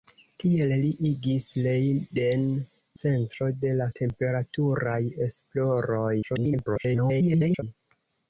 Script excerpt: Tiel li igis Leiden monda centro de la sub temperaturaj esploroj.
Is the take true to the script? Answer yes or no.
no